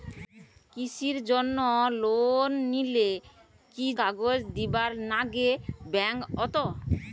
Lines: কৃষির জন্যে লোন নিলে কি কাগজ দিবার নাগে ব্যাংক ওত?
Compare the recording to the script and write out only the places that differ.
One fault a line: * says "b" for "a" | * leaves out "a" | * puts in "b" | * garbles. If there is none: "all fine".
all fine